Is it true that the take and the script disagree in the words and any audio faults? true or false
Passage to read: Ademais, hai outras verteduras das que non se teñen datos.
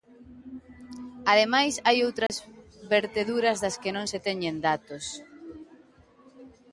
true